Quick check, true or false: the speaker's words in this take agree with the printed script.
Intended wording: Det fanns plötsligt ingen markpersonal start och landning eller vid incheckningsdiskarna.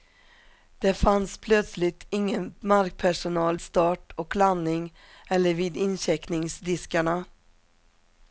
true